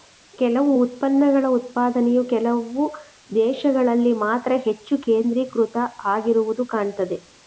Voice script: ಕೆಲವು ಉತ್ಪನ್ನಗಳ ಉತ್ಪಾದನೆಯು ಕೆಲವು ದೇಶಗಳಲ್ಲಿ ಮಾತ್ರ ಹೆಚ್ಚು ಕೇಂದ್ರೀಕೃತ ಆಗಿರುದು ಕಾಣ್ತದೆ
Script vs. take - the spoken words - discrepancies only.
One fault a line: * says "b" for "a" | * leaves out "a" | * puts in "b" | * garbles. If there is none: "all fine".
all fine